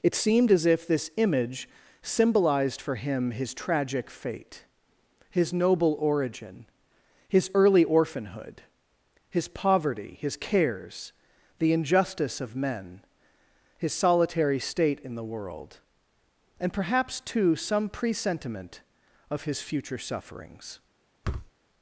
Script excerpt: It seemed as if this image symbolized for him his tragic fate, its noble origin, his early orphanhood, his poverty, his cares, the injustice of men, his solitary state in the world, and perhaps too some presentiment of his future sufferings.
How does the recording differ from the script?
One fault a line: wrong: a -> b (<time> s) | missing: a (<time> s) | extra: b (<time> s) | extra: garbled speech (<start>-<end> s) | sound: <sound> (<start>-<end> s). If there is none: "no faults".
wrong: its -> his (5.3 s)
sound: thud (21.2-21.5 s)